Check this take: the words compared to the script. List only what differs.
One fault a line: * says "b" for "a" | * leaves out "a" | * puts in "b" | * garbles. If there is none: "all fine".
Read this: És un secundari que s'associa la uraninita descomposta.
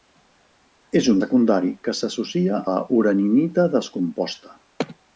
all fine